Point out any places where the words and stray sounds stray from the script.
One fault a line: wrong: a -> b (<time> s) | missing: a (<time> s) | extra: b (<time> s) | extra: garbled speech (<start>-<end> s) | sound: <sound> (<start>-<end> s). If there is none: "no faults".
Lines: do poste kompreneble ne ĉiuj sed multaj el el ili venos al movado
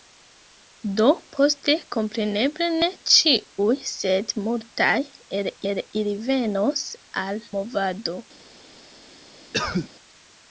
sound: cough (9.5-9.9 s)